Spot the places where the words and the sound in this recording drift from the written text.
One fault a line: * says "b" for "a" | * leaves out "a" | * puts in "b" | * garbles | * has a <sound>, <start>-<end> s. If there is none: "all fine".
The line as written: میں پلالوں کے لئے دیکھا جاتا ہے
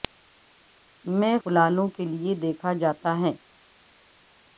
all fine